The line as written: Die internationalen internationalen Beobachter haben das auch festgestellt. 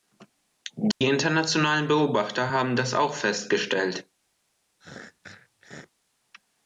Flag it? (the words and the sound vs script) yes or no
yes